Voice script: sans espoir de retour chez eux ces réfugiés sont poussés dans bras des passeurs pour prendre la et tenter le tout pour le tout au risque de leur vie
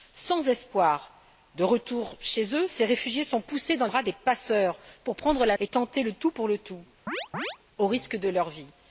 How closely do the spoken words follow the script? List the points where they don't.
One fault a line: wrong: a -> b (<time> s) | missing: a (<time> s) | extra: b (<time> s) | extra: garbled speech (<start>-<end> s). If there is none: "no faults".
no faults